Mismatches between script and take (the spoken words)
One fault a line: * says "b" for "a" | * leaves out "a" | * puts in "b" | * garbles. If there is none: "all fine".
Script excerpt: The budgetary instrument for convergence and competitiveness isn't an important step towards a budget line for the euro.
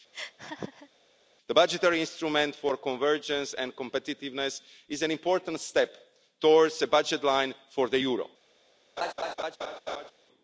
* says "is" for "isn't"